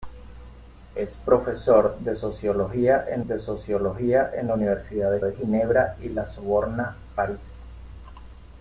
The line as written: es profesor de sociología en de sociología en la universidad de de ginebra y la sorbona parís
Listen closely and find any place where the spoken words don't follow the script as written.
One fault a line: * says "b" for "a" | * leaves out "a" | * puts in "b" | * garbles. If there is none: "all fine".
all fine